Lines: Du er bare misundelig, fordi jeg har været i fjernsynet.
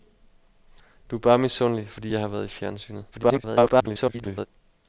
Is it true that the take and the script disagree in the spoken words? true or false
true